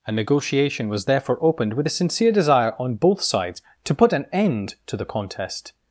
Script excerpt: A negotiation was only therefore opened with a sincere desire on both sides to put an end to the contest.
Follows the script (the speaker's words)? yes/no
no